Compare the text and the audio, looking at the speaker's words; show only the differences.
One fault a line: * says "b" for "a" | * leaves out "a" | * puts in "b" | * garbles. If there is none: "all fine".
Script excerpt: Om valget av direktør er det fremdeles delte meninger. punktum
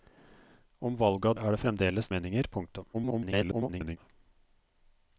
* leaves out "direktør"
* leaves out "delte"
* garbles